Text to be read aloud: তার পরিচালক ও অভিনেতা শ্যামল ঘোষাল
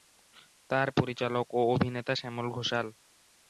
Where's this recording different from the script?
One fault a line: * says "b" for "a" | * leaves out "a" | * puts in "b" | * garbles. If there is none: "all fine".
all fine